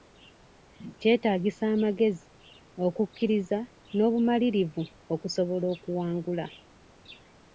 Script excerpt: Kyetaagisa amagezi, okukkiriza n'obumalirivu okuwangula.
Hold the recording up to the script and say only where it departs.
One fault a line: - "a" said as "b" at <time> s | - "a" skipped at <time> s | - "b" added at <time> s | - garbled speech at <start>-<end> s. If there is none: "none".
- "okusobola" added at 5.1 s